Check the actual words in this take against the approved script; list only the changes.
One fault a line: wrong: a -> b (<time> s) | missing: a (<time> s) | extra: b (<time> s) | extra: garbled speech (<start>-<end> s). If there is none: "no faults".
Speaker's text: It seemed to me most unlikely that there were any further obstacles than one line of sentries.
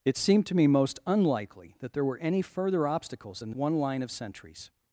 no faults